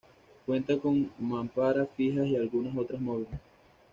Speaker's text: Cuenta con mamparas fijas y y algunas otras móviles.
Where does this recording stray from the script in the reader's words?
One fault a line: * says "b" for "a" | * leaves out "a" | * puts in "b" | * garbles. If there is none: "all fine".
* leaves out "y"